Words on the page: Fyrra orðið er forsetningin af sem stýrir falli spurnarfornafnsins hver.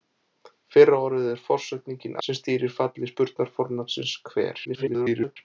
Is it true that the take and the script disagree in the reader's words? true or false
true